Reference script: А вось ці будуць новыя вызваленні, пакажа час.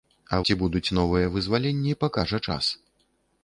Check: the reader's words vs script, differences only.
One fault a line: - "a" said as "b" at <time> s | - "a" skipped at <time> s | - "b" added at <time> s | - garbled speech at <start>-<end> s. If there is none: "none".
- "вось" skipped at 0.4 s